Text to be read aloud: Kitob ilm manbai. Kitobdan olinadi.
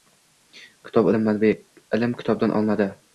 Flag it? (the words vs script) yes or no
yes